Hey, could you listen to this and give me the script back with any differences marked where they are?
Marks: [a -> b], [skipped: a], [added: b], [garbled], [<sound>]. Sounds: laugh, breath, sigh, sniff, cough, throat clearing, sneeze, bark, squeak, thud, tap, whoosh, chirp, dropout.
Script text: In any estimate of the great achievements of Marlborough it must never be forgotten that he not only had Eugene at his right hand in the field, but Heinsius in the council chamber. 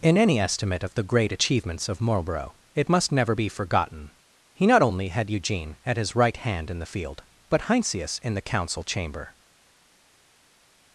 In any estimate of the great achievements of Marlborough it must never be forgotten [skipped: that] he not only had Eugene at his right hand in the field, but Heinsius in the council chamber.